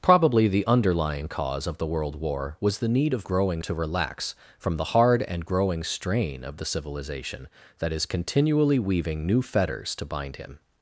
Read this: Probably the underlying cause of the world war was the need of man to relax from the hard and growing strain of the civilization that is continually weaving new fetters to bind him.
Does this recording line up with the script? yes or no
no